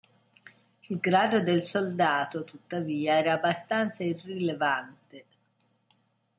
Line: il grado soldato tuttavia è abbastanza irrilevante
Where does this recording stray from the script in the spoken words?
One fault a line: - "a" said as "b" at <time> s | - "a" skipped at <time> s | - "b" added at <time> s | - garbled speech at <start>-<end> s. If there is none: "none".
- "del" added at 1.4 s
- "è" said as "era" at 3.2 s